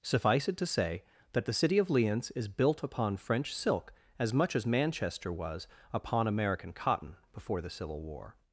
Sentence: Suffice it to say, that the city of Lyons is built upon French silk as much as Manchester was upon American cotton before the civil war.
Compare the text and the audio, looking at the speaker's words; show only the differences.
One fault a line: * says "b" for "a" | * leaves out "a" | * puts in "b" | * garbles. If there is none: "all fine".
all fine